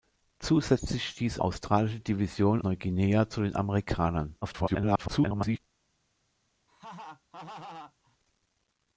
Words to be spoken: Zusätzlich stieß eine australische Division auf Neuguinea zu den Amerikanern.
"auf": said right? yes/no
no